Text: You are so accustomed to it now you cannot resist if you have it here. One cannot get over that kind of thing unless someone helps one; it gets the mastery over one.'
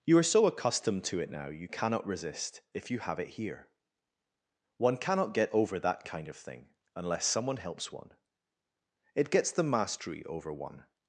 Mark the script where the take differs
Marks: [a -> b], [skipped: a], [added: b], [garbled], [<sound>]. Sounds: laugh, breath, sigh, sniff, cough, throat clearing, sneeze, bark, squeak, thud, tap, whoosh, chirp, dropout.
You are so accustomed to it now you cannot resist if you have it here. One cannot get over that kind of thing unless someone helps one; it gets the mastery over one.'